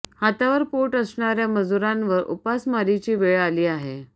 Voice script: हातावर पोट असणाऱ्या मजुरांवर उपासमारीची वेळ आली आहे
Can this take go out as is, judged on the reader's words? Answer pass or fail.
pass